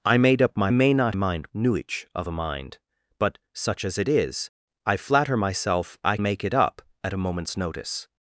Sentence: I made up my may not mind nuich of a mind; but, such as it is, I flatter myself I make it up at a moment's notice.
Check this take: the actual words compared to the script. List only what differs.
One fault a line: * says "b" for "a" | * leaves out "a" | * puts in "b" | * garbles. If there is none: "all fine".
all fine